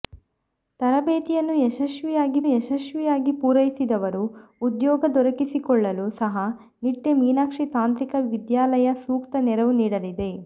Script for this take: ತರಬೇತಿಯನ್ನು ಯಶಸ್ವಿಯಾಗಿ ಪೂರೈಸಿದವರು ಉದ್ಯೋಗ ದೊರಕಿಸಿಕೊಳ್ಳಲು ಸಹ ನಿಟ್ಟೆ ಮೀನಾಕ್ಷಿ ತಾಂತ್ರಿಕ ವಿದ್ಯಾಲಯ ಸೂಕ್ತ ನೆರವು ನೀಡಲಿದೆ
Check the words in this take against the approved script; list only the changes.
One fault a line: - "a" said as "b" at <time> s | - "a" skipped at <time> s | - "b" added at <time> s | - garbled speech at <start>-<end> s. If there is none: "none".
- "ಯಶಸ್ವಿಯಾಗಿ" added at 2.5 s